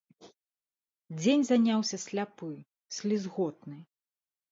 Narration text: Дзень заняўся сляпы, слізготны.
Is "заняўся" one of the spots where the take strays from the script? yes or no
no